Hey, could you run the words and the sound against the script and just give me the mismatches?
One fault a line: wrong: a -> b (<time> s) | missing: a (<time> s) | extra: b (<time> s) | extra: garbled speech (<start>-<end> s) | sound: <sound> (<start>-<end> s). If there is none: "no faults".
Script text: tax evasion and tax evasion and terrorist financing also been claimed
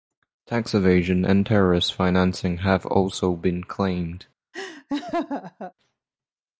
missing: tax evasion and (1.4 s)
extra: have (2.6 s)
sound: laugh (4.5-5.7 s)